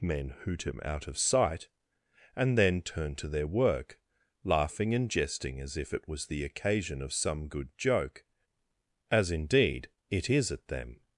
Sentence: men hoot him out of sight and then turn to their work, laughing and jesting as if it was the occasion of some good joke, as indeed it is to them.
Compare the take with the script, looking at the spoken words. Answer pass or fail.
fail